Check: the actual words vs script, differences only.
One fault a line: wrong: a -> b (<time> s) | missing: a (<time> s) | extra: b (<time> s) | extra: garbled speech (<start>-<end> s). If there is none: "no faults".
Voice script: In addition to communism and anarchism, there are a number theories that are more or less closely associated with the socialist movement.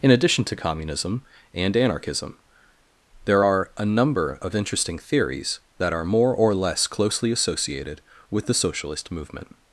extra: of interesting (4.4 s)